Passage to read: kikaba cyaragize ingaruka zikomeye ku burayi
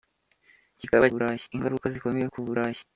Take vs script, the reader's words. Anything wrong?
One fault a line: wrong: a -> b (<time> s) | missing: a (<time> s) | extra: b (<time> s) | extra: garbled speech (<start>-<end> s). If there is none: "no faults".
wrong: cyaragize -> burayi (1.1 s)